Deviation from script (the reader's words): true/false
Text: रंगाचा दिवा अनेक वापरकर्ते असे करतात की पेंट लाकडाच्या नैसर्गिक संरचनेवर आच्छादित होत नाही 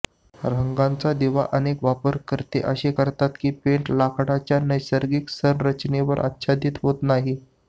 false